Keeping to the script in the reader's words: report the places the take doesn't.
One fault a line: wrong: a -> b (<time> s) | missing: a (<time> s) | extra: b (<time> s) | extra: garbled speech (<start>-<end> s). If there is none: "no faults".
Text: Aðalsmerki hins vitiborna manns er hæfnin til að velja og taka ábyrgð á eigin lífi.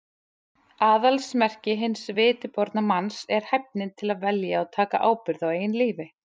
no faults